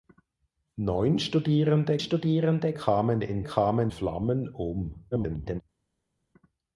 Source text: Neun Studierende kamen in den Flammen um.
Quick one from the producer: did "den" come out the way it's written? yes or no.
no